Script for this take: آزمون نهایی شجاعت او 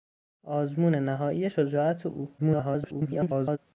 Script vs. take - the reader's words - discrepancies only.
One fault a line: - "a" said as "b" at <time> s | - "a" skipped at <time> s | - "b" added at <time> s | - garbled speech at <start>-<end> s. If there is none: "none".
- garbled speech at 2.4-3.6 s